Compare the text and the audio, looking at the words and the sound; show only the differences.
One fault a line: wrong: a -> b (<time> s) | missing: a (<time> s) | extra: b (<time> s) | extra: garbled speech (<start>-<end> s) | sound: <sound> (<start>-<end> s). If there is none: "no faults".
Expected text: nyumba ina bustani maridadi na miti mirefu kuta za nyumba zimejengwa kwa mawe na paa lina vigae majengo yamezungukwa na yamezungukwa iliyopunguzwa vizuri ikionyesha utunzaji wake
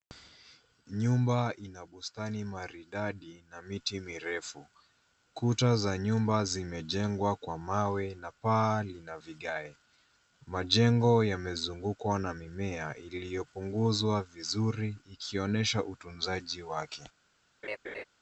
wrong: yamezungukwa -> mimea (12.3 s)
sound: laugh (17.6-18.0 s)